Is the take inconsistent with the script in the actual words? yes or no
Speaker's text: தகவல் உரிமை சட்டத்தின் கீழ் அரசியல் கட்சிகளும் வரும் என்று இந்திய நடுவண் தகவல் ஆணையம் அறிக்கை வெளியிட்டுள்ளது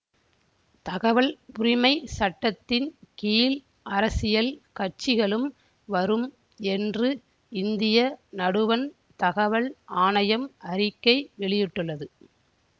no